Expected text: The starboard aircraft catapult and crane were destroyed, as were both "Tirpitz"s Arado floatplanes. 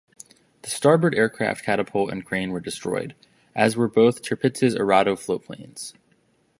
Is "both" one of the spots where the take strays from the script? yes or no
no